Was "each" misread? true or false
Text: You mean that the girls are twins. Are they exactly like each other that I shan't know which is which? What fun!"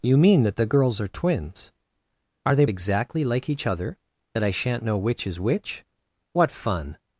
false